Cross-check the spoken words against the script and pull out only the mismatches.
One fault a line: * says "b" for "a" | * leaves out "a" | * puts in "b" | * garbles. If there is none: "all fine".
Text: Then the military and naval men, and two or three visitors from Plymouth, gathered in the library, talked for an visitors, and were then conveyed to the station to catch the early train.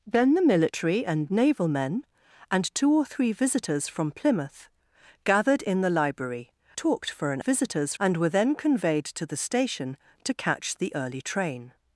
all fine